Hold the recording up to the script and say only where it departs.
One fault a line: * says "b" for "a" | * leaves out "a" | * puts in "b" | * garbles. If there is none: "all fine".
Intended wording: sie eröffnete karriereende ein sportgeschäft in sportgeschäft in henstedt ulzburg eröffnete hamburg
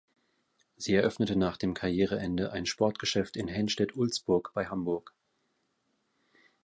* puts in "nach dem"
* leaves out "sportgeschäft in"
* says "bei" for "eröffnete"